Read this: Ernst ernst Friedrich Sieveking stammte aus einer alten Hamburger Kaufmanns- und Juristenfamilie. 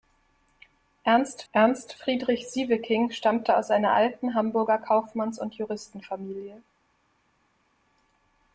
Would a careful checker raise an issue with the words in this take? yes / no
no